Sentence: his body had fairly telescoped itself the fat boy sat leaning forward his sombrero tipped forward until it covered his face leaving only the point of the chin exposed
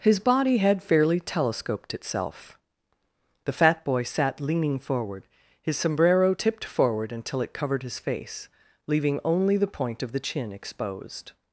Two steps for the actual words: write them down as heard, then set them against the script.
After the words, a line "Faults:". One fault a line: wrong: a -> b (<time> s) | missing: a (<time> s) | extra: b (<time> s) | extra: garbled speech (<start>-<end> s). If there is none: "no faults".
his body had fairly telescoped itself the fat boy sat leaning forward his sombrero tipped forward until it covered his face leaving only the point of the chin exposed
Faults:
no faults